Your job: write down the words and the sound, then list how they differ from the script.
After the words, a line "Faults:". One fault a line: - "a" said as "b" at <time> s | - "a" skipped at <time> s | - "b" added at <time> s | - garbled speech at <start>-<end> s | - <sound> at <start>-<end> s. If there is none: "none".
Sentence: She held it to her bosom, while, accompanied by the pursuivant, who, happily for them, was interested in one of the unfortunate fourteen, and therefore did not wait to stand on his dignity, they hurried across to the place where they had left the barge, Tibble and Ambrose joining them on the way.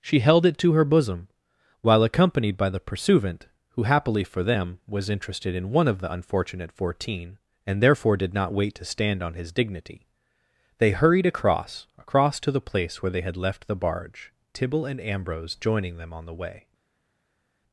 She held it to her bosom, while, accompanied by the pursuivant, who, happily for them, was interested in one of the unfortunate fourteen, and therefore did not wait to stand on his dignity, they hurried across across to the place where they had left the barge, Tibble and Ambrose joining them on the way.
Faults:
- "across" added at 12.0 s